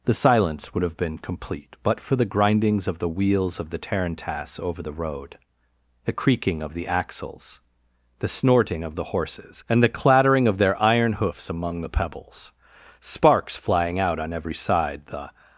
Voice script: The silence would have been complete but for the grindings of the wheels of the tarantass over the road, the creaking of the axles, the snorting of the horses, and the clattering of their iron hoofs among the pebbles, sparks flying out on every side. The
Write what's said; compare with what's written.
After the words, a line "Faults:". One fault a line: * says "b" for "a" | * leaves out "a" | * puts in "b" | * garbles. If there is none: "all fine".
The silence would have been complete but for the grindings of the wheels of the tarantass over the road, the creaking of the axles, the snorting of the horses, and the clattering of their iron hoofs among the pebbles, sparks flying out on every side. The
Faults:
all fine